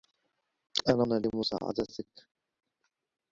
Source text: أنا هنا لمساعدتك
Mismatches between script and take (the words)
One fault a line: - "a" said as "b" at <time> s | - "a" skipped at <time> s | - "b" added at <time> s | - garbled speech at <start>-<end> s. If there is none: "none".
none